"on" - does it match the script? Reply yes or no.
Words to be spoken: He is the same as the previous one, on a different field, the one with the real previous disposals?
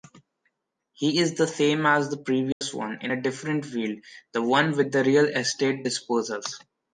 no